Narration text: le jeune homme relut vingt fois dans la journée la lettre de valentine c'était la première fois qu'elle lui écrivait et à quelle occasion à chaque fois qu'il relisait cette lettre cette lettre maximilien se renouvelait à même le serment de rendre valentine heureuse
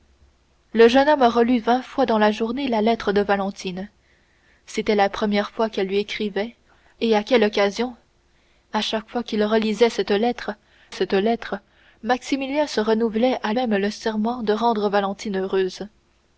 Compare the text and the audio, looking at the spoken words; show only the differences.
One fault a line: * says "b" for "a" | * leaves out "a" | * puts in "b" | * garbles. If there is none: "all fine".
all fine